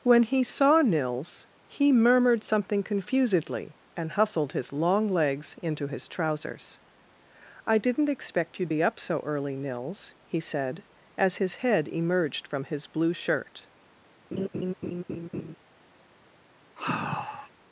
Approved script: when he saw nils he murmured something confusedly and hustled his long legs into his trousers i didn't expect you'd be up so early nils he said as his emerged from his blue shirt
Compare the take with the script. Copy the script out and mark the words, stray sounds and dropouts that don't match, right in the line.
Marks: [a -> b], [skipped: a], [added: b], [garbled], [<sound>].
when he saw nils he murmured something confusedly and hustled his long legs into his trousers i didn't expect you'd be up so early nils he said as his [added: head] emerged from his blue shirt [laugh] [sigh]